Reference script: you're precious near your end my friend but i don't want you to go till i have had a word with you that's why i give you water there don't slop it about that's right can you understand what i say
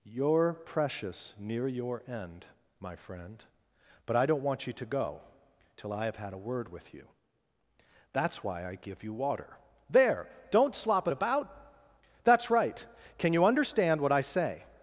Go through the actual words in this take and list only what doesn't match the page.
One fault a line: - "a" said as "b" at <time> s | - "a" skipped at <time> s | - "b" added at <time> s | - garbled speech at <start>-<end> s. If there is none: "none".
none